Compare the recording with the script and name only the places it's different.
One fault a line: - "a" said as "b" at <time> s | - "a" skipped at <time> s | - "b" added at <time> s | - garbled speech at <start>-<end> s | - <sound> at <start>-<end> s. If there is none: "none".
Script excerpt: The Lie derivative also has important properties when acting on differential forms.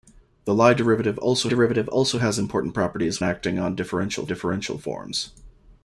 - "derivative also" added at 1.5 s
- "when" skipped at 3.2 s
- "differential" added at 4.3 s